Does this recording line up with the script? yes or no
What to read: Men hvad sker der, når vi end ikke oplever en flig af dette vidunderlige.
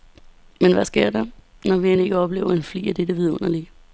yes